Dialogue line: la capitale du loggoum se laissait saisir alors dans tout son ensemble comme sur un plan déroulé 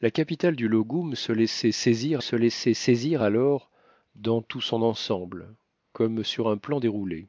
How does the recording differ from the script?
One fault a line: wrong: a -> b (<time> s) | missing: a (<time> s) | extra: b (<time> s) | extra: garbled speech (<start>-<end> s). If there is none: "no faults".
extra: se laissait saisir (2.2 s)